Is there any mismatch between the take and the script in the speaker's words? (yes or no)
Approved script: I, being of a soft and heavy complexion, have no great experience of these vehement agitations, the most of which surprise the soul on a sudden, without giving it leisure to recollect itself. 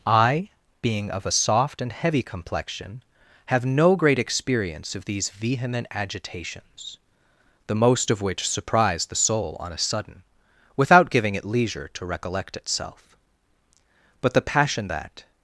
yes